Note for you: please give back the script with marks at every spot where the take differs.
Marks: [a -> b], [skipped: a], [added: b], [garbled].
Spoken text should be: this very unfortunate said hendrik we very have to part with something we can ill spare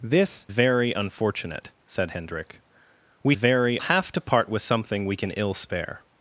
this very unfortunate said hendrik we very have to part with something we can ill spare